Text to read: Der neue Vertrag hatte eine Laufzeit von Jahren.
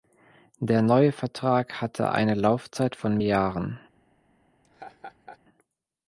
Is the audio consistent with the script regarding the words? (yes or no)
yes